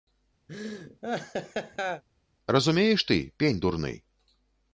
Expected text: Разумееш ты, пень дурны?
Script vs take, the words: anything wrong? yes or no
no